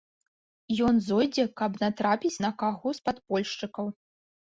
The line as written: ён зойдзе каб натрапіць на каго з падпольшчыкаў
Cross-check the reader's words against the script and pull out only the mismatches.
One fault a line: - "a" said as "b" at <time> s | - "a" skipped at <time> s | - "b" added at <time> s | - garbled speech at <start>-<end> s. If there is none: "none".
none